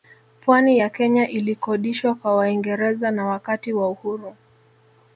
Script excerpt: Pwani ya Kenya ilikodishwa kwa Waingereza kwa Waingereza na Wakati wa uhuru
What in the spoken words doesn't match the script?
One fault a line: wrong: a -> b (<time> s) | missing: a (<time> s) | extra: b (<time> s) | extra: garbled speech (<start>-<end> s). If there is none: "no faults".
missing: kwa Waingereza (3.1 s)